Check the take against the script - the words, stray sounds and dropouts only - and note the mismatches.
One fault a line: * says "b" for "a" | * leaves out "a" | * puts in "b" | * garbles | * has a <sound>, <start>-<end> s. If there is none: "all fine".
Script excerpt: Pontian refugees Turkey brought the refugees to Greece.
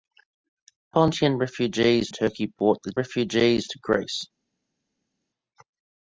all fine